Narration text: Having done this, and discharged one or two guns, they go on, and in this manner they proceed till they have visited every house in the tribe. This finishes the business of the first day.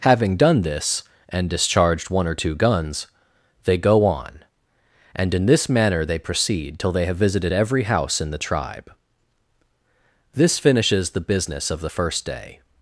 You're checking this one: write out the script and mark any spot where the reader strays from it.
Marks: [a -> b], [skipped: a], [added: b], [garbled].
Having done this, and discharged one or two guns, they go on, and in this manner they proceed till they have visited every house in the tribe. This finishes the business of the first day.